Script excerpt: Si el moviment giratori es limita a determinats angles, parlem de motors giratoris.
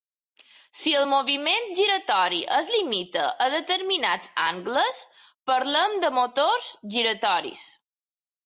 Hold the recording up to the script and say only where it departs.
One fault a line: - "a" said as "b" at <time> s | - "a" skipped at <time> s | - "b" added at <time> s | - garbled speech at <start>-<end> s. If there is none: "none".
none